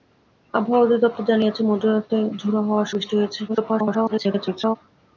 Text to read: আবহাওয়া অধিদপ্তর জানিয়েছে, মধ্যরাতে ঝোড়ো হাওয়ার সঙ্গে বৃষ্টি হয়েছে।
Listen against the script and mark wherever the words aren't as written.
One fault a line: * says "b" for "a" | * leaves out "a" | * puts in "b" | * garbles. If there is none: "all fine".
* leaves out "সঙ্গে"
* garbles